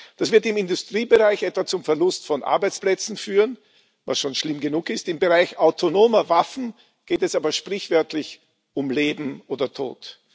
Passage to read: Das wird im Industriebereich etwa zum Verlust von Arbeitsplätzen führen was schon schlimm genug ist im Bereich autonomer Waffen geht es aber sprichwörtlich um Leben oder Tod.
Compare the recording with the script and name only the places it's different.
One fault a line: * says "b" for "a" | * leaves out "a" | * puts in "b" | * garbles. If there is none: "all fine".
all fine